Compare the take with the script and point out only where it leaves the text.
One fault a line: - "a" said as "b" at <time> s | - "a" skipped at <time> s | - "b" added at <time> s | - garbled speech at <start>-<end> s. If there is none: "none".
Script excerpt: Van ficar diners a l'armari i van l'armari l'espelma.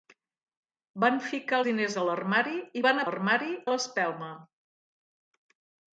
none